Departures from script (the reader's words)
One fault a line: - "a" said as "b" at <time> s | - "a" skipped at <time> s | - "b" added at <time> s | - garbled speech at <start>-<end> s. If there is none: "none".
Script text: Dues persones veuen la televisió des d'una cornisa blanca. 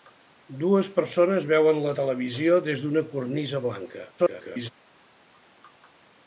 - garbled speech at 4.2-4.7 s